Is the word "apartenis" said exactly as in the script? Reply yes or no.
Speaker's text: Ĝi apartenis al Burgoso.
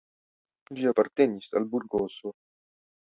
yes